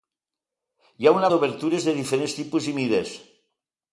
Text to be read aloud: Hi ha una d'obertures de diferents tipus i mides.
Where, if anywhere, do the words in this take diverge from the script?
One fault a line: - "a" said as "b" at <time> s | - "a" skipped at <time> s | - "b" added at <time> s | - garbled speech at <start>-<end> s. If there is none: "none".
none